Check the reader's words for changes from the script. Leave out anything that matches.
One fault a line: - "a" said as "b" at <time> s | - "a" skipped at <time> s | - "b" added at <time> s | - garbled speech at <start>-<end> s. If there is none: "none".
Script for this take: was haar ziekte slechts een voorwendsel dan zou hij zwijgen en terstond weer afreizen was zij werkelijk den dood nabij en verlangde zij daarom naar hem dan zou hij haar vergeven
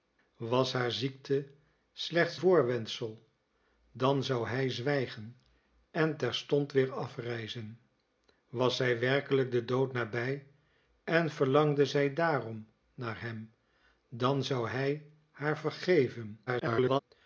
- "een" skipped at 2.4 s
- garbled speech at 16.5-17.0 s